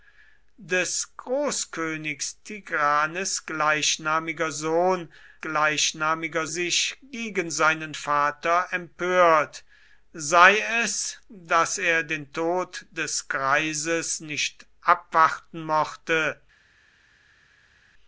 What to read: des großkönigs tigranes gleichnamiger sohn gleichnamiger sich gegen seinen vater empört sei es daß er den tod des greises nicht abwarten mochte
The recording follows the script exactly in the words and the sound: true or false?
true